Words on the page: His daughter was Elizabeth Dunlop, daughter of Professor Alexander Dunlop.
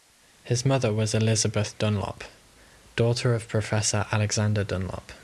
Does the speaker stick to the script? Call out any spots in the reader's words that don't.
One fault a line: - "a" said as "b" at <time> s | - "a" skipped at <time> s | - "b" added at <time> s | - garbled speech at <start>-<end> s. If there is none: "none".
- "daughter" said as "mother" at 0.7 s